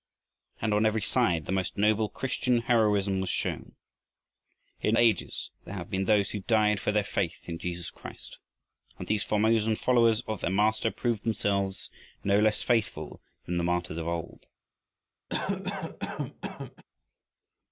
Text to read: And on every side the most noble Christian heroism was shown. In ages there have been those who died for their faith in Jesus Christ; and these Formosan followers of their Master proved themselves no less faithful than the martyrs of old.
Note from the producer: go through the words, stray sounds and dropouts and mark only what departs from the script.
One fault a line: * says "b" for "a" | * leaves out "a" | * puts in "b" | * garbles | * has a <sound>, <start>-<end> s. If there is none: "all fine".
* has a cough, 15.3-16.8 s